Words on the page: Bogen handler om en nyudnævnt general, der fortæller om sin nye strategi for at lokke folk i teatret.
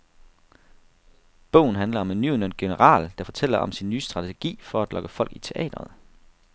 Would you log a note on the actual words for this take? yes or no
no